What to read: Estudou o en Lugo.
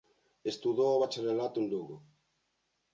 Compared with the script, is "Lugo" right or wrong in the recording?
right